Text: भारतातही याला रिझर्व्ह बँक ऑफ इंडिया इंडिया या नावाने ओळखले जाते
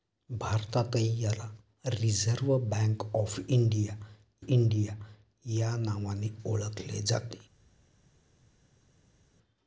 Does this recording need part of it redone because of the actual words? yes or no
no